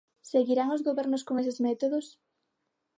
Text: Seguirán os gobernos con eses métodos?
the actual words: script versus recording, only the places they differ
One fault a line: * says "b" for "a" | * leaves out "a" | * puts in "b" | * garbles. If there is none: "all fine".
all fine